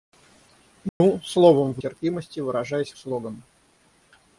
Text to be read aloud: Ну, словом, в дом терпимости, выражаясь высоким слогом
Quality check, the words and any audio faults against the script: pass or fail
fail